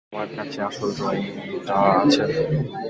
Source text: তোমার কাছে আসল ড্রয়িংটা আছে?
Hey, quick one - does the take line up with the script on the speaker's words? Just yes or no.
yes